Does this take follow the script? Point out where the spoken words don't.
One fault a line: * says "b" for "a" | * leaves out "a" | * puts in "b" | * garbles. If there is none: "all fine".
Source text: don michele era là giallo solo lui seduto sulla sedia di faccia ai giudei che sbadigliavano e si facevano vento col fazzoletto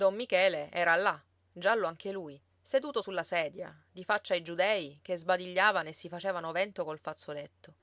* says "anche" for "solo"